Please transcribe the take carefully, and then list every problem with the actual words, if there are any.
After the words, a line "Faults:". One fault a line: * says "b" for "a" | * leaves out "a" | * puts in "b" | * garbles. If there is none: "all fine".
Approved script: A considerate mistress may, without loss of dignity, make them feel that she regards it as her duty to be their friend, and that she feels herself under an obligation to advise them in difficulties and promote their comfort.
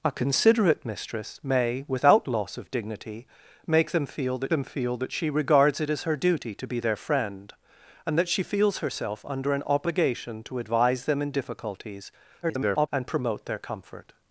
A considerate mistress may, without loss of dignity, make them feel that them feel that she regards it as her duty to be their friend, and that she feels herself under an obligation to advise them in difficulties [garbled] and promote their comfort.
Faults:
* puts in "them feel that"
* garbles